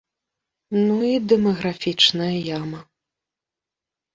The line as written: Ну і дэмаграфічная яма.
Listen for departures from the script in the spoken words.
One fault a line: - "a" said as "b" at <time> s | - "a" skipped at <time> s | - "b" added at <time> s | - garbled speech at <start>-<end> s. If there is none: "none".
none